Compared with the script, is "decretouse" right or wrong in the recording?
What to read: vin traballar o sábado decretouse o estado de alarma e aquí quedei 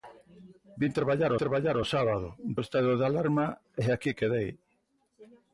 wrong